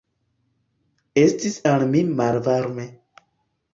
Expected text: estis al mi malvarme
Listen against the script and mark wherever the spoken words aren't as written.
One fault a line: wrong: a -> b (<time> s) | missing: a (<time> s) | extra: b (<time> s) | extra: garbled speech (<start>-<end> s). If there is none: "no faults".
no faults